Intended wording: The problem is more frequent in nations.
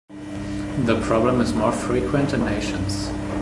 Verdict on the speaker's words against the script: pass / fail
pass